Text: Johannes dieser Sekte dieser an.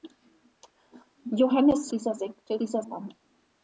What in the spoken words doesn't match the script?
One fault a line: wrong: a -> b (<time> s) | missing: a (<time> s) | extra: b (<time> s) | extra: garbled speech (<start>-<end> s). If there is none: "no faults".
no faults